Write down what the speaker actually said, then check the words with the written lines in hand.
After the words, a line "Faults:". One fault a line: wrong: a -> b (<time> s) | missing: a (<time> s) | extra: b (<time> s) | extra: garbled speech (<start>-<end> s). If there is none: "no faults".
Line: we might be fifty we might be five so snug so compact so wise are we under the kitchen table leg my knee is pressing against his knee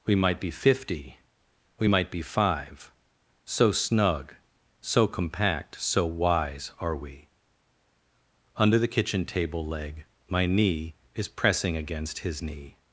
we might be fifty we might be five so snug so compact so wise are we under the kitchen table leg my knee is pressing against his knee
Faults:
no faults